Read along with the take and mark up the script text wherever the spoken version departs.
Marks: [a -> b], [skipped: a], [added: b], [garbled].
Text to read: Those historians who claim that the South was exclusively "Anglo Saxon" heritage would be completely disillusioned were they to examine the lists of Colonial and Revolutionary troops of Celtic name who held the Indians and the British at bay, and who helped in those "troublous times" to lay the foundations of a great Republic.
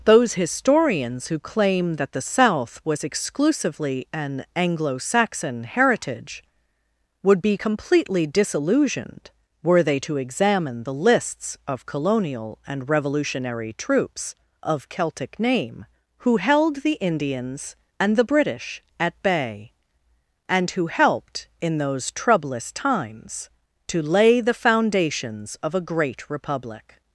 Those historians who claim that the South was exclusively [added: an] "Anglo Saxon" heritage would be completely disillusioned were they to examine the lists of Colonial and Revolutionary troops of Celtic name who held the Indians and the British at bay, and who helped in those "troublous times" to lay the foundations of a great Republic.